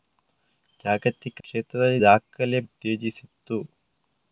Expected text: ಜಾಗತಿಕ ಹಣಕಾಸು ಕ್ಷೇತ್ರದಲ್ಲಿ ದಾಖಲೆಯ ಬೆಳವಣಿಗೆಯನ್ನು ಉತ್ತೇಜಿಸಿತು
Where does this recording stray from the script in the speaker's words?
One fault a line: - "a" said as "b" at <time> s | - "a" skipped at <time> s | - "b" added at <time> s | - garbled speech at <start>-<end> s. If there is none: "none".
- "ಹಣಕಾಸು" skipped at 1.4 s
- "ಬೆಳವಣಿಗೆಯನ್ನು" skipped at 2.7 s